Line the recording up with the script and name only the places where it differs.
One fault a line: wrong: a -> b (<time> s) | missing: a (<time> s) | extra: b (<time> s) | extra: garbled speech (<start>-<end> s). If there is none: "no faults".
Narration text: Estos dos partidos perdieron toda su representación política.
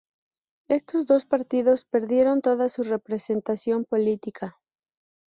no faults